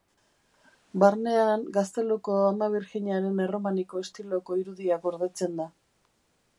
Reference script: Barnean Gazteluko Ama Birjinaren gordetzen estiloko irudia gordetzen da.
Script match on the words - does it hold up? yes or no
no